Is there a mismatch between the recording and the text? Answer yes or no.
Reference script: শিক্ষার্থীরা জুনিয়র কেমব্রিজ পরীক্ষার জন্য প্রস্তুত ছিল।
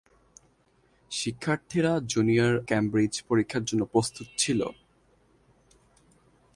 no